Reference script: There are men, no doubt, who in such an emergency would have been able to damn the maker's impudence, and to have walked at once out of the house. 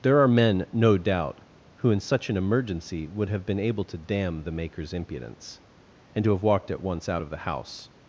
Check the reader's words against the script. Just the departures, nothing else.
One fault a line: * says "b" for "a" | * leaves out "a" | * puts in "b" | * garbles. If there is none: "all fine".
all fine